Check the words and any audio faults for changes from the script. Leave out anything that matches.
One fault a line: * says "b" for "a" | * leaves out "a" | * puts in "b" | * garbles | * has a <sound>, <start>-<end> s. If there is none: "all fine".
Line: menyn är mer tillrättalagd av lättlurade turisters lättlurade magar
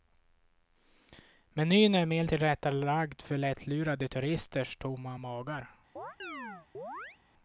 * says "för" for "av"
* says "tomma" for "lättlurade"
* has a chirp, 6.0-7.2 s